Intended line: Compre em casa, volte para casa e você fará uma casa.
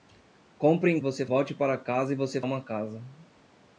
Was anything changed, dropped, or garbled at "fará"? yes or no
yes